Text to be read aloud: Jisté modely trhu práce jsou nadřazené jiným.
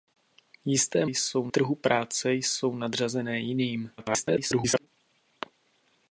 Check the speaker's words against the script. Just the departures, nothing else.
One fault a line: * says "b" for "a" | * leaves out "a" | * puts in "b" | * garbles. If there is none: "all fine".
* says "jsou" for "modely"
* garbles